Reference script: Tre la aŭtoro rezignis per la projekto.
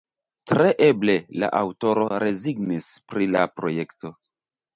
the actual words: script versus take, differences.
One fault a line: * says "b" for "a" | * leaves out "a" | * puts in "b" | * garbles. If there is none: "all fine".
* puts in "eble"
* says "pri" for "per"